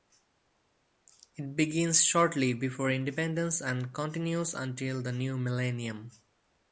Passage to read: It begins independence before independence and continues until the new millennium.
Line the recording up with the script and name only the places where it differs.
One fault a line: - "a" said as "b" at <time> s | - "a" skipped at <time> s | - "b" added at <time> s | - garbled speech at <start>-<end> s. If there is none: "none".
- "independence" said as "shortly" at 2.0 s